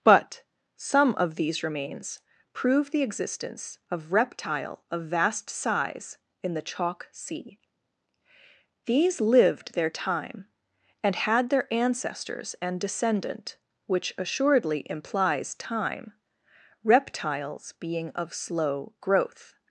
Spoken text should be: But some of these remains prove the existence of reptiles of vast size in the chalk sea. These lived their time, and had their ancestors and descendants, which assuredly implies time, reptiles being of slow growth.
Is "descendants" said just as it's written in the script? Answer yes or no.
no